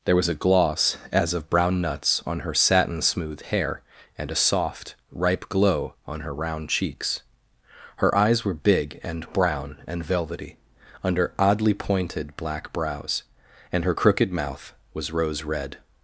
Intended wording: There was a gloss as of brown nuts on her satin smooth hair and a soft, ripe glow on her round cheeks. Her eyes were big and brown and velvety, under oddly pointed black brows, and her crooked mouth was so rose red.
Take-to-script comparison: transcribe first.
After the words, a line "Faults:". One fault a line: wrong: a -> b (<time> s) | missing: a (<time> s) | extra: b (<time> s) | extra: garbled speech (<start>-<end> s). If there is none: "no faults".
There was a gloss as of brown nuts on her satin smooth hair and a soft, ripe glow on her round cheeks. Her eyes were big and brown and velvety, under oddly pointed black brows, and her crooked mouth was rose red.
Faults:
missing: so (15.1 s)